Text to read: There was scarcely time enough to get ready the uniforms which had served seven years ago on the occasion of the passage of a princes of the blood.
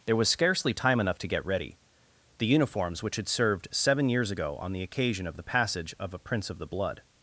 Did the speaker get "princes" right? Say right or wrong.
wrong